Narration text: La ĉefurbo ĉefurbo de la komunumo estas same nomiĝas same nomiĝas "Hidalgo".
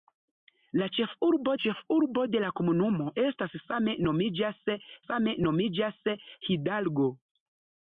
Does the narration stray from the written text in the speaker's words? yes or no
no